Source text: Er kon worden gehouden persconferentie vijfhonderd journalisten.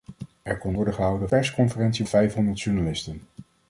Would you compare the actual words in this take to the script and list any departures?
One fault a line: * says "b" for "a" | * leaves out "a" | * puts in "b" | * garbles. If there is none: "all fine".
all fine